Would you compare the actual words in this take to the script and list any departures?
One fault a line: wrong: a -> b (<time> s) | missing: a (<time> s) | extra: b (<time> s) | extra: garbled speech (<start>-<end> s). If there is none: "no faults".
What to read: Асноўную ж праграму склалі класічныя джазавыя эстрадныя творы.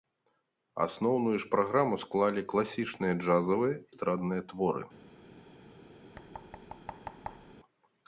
no faults